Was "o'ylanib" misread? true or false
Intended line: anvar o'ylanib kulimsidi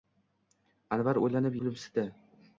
false